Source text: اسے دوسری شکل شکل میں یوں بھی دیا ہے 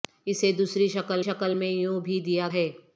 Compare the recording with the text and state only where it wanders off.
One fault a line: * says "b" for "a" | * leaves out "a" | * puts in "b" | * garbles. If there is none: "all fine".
all fine